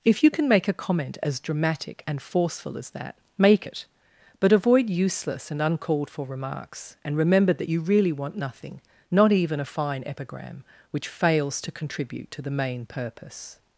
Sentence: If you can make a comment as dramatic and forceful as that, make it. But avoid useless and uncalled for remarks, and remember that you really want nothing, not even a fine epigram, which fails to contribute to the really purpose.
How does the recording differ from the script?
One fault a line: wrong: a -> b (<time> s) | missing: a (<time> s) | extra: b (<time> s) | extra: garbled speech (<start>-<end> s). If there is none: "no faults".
wrong: really -> main (12.5 s)